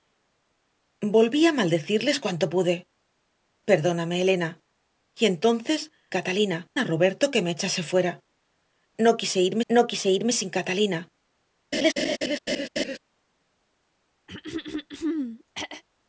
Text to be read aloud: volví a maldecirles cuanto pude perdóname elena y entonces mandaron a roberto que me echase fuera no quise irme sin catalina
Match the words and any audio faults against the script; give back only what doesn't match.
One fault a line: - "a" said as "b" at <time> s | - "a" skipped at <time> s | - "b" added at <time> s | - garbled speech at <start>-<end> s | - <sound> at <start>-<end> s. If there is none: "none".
- "mandaron" said as "catalina" at 6.1 s
- "no quise irme" added at 9.7 s
- laugh at 11.7-13.0 s
- throat clearing at 14.3-15.8 s